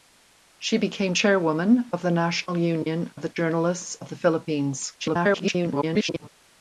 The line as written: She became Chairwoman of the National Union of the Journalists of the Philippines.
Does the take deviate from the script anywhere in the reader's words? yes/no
yes